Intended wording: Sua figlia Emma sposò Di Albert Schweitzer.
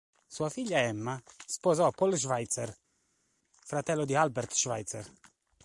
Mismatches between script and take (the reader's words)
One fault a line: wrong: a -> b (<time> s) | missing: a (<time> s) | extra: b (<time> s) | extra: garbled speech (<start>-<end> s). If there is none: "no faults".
extra: Paul Schweitzer fratello (1.9 s)